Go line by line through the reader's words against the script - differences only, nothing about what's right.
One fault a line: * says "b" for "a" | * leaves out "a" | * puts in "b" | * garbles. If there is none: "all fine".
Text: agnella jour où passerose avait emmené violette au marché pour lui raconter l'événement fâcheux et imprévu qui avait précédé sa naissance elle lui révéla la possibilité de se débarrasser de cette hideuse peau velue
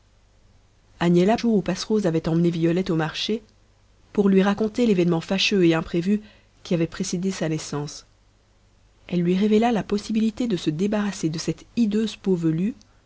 all fine